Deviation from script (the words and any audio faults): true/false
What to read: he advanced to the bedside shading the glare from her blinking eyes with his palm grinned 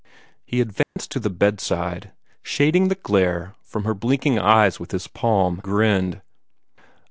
true